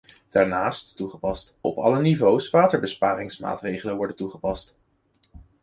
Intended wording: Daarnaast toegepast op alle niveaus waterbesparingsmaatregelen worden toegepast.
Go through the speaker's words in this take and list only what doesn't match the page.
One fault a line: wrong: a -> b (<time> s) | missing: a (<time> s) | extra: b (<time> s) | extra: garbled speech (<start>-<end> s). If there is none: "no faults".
no faults